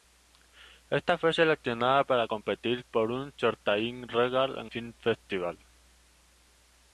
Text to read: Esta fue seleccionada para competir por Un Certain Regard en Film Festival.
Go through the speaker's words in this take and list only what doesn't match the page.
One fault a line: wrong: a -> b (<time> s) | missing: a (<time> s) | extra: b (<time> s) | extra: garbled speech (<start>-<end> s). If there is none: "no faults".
no faults